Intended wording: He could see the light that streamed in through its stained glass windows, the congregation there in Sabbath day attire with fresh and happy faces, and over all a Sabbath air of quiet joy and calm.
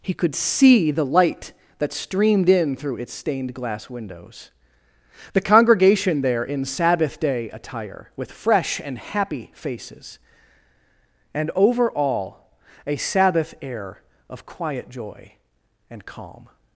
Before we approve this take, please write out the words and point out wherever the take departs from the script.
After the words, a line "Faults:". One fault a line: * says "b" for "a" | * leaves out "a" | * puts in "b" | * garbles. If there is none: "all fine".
He could see the light that streamed in through its stained glass windows, the congregation there in Sabbath day attire with fresh and happy faces, and over all a Sabbath air of quiet joy and calm.
Faults:
all fine